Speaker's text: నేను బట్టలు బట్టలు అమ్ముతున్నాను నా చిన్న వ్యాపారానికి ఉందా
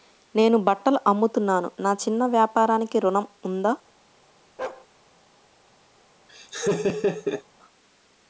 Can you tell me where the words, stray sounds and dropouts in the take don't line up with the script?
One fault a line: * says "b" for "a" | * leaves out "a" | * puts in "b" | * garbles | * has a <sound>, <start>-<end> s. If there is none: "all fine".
* leaves out "బట్టలు"
* puts in "ఋణం"
* has a bark, 4.6-4.9 s
* has a laugh, 6.3-7.4 s